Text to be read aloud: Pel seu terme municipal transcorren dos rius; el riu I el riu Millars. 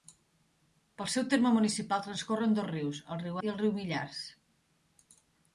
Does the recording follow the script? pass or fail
pass